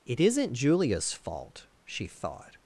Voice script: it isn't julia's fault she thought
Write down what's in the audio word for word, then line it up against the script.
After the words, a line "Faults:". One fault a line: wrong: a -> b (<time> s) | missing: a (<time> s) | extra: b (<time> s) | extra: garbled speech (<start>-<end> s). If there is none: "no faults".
it isn't julia's fault she thought
Faults:
no faults